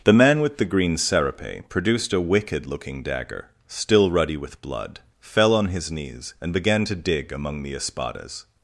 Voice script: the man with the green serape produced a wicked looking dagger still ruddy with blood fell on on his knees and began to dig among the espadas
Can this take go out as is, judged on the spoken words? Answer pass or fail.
fail